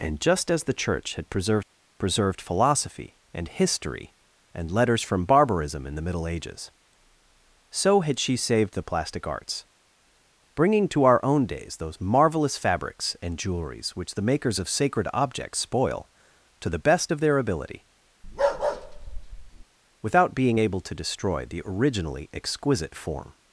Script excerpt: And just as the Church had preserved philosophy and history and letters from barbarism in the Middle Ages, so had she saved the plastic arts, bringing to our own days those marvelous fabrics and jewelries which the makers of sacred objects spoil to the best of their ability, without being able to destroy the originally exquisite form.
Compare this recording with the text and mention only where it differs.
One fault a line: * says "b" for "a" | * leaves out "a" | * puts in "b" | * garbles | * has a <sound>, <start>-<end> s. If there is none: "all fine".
* puts in "preserved"
* has a bark, 18.2-19.6 s